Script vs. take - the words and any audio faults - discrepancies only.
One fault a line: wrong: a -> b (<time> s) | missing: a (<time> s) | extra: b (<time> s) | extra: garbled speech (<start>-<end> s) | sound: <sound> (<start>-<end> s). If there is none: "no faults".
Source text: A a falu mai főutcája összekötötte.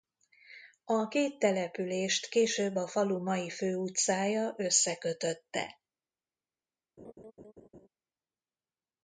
extra: két települést később (1.1 s)
sound: laugh (7.0-7.9 s)